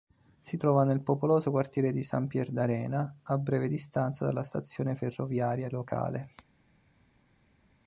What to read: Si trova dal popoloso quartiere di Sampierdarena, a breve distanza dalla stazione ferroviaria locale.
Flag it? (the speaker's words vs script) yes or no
yes